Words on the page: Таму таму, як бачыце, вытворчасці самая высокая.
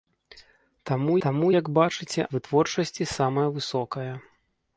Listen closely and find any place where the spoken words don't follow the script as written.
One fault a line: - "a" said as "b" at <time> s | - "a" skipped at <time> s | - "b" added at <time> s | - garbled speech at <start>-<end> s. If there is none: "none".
none